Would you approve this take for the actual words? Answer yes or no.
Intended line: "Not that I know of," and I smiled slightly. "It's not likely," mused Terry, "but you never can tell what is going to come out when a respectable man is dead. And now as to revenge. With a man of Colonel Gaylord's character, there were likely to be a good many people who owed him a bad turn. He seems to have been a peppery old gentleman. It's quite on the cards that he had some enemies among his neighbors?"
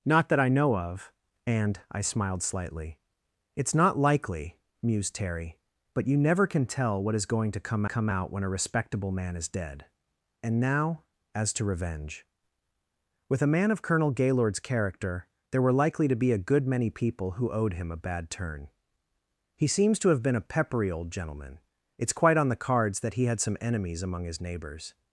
no